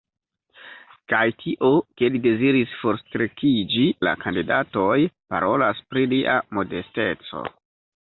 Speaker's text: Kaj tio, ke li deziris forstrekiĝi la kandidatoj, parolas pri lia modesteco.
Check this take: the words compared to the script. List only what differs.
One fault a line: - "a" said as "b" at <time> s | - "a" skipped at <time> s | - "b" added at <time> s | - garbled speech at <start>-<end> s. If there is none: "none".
none